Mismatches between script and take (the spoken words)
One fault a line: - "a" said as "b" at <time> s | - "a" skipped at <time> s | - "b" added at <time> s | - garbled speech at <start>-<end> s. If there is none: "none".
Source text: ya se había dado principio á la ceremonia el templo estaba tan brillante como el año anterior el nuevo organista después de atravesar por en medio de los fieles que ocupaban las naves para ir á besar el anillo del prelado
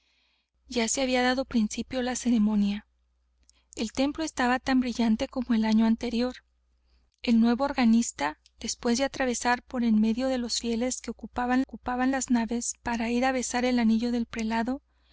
- "ocupaban" added at 11.6 s